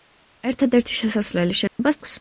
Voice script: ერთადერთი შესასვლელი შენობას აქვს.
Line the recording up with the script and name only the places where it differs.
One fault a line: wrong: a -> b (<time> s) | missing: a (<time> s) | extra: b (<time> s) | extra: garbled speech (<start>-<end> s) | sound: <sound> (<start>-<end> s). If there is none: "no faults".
sound: dropout (1.7-1.8 s)